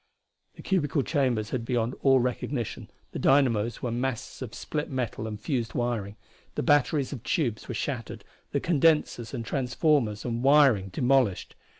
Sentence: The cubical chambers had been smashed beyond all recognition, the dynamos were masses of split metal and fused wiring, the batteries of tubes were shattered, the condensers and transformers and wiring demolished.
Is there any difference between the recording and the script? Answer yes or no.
yes